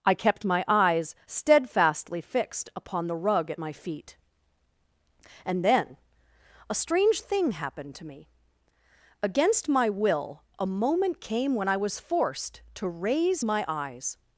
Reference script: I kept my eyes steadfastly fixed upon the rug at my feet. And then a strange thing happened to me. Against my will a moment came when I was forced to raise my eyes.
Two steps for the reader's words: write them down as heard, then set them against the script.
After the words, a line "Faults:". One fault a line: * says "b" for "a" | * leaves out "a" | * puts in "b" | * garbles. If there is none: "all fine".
I kept my eyes steadfastly fixed upon the rug at my feet. And then a strange thing happened to me. Against my will a moment came when I was forced to raise my eyes.
Faults:
all fine